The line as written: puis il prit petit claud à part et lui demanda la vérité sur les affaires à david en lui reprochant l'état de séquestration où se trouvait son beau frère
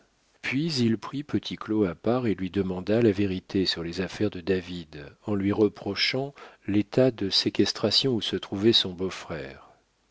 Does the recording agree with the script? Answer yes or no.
no